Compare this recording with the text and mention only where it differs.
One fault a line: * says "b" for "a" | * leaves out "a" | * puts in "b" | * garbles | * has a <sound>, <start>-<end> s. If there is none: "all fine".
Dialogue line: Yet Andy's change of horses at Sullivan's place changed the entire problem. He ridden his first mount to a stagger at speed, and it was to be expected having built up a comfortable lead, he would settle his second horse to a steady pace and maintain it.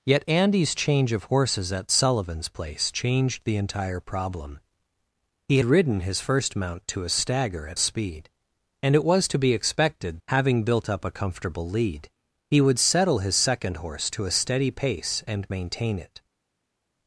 all fine